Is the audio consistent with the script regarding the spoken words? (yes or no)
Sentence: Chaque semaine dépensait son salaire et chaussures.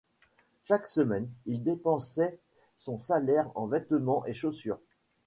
no